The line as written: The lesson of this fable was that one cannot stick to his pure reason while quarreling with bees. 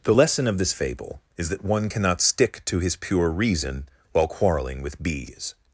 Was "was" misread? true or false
true